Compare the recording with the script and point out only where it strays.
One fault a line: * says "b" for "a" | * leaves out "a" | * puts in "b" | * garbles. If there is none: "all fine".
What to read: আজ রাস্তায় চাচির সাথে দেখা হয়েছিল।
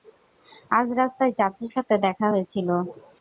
all fine